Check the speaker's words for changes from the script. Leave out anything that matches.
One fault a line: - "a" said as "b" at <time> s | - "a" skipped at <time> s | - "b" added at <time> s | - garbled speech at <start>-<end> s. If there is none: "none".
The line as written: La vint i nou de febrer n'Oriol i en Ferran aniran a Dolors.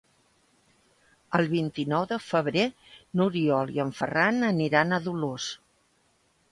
- "La" said as "El" at 1.4 s